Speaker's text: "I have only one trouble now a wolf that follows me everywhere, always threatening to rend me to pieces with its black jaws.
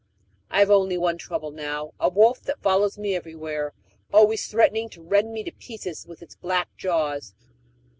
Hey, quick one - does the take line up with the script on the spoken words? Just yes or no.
yes